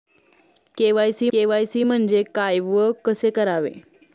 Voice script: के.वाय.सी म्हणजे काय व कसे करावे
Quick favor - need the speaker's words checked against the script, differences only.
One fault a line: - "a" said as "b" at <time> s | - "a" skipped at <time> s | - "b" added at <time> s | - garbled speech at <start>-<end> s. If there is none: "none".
- "के.वाय.सी" added at 1.3 s